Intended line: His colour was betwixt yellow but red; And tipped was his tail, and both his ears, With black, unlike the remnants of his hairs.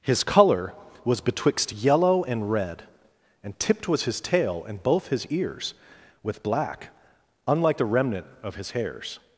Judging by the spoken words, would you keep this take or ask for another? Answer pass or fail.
fail